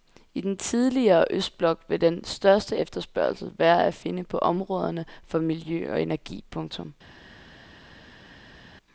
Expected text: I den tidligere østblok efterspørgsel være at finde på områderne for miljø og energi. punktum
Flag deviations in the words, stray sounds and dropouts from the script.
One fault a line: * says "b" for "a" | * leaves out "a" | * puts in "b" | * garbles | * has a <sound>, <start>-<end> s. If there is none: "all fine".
* puts in "vil den største"